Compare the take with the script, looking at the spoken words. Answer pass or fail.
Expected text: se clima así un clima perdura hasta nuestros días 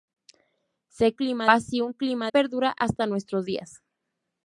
pass